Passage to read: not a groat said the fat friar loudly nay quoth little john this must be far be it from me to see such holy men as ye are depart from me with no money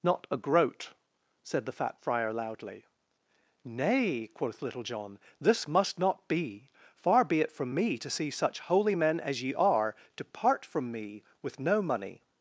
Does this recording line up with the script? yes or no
no